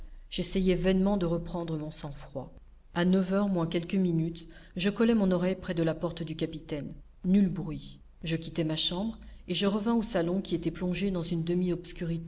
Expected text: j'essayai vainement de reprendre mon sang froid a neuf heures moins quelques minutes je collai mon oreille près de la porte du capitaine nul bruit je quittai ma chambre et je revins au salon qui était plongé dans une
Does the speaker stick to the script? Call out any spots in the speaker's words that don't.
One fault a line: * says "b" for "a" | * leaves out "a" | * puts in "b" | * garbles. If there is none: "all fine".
all fine